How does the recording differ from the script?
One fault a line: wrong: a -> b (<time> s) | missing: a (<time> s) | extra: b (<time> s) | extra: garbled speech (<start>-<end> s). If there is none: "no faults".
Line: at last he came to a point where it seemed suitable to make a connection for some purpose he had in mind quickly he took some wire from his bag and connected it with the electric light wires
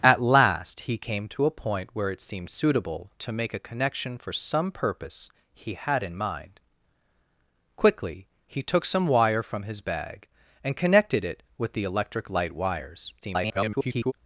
extra: garbled speech (13.2-14.1 s)